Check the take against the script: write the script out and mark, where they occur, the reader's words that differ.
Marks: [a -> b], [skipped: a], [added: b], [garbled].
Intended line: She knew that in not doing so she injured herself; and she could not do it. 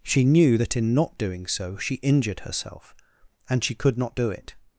She knew that in not doing so she injured herself; and she could not do it.